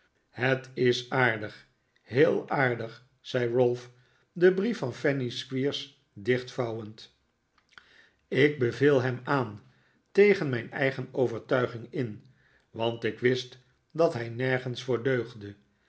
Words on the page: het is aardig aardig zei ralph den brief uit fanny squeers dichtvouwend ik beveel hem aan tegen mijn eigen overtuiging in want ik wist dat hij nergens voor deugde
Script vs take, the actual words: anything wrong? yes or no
yes